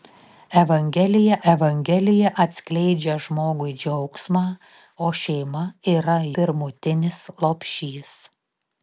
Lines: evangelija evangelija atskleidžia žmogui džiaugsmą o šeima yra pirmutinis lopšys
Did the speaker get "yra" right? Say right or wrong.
right